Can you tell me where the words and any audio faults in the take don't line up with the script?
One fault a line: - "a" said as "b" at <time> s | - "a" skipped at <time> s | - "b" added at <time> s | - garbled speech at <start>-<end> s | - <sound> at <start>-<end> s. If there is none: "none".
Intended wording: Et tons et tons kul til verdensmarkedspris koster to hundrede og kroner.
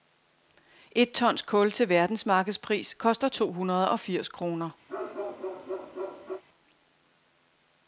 - "et tons" skipped at 1.4 s
- "firs" added at 4.0 s
- bark at 4.9-6.4 s